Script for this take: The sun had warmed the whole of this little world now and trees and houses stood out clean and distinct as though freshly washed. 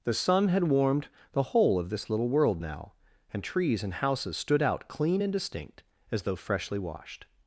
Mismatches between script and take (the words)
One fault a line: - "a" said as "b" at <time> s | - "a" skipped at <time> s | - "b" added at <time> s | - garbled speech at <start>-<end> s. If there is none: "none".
none